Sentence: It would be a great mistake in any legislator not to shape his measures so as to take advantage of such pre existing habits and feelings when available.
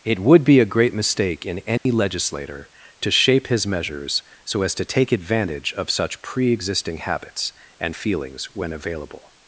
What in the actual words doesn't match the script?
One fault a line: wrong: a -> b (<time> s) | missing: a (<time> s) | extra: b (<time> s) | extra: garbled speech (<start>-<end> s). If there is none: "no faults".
missing: not (2.7 s)